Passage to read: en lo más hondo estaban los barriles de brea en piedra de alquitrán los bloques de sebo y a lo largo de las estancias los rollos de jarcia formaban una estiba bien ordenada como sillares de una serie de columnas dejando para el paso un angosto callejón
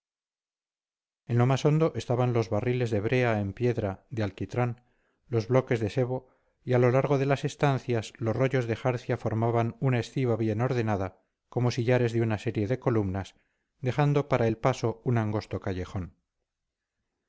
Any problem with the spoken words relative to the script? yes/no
no